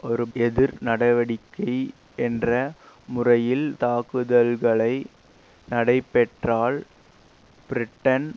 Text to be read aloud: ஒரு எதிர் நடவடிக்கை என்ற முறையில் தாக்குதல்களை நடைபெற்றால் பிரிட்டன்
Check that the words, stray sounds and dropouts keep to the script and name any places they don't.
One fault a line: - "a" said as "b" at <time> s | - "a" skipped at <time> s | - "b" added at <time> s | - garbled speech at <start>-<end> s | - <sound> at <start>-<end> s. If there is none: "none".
none